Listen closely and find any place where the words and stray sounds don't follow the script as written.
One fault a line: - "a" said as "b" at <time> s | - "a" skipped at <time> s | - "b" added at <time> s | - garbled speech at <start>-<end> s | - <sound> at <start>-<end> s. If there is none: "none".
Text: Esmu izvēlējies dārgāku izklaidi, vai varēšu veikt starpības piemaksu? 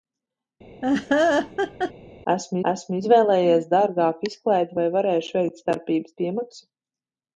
- laugh at 0.8-1.9 s
- "esmu" added at 2.7 s